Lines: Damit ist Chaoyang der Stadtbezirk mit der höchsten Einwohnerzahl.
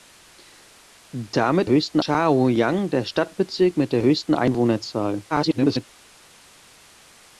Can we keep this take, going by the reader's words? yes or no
no